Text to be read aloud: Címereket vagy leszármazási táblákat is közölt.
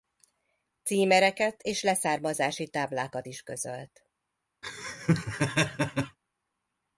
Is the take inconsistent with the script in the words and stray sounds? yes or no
yes